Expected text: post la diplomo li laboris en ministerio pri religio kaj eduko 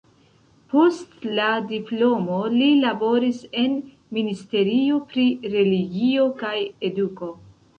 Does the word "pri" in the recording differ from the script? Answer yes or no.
no